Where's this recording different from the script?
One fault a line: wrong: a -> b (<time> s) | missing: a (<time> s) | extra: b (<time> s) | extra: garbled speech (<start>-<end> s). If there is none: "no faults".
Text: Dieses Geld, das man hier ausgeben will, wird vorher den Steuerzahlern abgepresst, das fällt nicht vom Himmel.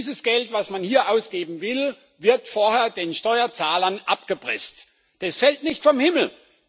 no faults